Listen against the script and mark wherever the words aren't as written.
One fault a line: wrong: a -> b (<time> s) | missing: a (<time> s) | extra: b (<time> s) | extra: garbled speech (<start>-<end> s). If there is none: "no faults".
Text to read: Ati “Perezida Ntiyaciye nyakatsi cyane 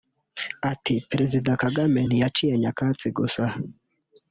extra: Kagame (1.6 s)
wrong: cyane -> gusa (3.2 s)